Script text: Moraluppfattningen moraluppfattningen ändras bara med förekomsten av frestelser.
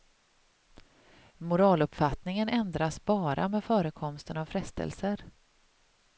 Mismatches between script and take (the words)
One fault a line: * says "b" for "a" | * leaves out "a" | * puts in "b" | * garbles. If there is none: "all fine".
* leaves out "moraluppfattningen"